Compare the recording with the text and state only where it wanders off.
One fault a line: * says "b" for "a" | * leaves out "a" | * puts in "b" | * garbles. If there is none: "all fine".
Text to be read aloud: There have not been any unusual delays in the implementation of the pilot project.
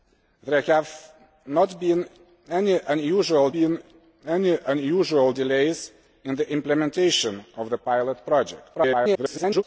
* puts in "been any unusual"
* garbles